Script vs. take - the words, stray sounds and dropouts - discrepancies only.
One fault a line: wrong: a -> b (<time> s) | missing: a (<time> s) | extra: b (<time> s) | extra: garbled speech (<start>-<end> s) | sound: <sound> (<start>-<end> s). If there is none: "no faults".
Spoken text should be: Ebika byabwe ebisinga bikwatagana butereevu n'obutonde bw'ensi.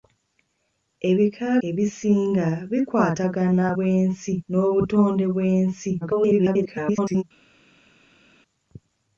missing: byabwe (1.5 s)
wrong: butereevu -> bw'ensi (3.8 s)
extra: garbled speech (6.0-7.2 s)